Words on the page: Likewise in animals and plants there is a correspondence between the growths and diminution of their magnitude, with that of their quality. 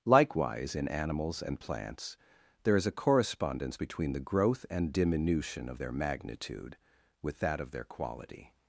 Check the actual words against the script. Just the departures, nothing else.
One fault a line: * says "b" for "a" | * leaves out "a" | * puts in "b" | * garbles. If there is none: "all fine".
* says "growth" for "growths"